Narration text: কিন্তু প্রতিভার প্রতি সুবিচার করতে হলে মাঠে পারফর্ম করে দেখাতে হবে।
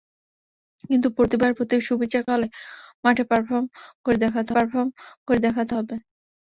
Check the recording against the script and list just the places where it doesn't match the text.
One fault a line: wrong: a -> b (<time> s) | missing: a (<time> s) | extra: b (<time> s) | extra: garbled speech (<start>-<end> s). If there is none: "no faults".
missing: করতে (2.2 s)
extra: পারফর্ম করে দেখাতে (4.5 s)